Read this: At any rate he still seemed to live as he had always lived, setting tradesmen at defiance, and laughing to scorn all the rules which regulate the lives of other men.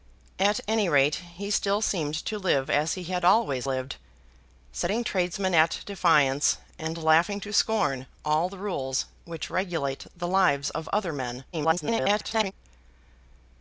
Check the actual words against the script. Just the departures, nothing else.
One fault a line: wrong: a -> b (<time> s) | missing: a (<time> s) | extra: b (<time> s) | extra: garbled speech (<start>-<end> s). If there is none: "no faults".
extra: garbled speech (11.5-12.5 s)